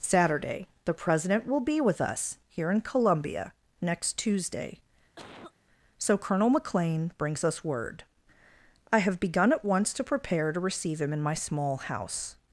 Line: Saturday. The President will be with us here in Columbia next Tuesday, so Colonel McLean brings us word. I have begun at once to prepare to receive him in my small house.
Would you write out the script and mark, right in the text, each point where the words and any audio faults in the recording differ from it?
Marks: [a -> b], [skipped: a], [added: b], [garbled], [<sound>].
Saturday. The President will be with us here in Columbia next Tuesday, [cough] so Colonel McLean brings us word. I have begun at once to prepare to receive him in my small house.